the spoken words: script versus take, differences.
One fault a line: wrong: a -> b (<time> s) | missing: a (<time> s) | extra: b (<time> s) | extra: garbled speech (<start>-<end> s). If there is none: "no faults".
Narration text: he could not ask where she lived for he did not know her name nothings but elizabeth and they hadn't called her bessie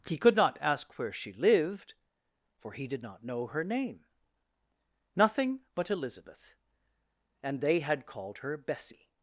wrong: nothings -> nothing (5.2 s)
wrong: hadn't -> had (7.8 s)